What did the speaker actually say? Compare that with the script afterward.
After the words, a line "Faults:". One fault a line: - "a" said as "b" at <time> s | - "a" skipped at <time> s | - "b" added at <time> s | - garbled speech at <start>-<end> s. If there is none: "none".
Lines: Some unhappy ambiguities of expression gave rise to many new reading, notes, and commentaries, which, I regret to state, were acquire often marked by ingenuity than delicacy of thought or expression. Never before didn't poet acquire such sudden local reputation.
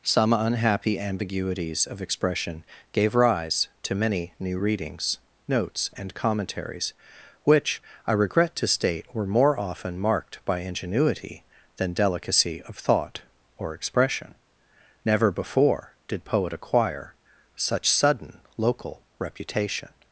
Some unhappy ambiguities of expression gave rise to many new readings, notes, and commentaries, which, I regret to state, were more often marked by ingenuity than delicacy of thought or expression. Never before did poet acquire such sudden local reputation.
Faults:
- "reading" said as "readings" at 4.5 s
- "acquire" said as "more" at 9.3 s
- "didn't" said as "did" at 16.1 s